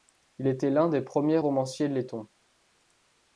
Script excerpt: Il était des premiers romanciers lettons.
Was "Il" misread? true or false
false